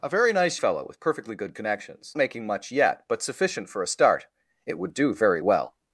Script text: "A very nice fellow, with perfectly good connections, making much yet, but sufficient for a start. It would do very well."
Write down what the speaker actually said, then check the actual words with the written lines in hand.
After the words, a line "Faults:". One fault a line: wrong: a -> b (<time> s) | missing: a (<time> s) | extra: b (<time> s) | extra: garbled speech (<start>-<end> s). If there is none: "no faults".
"A very nice fellow, with perfectly good connections, making much yet, but sufficient for a start. It would do very well."
Faults:
no faults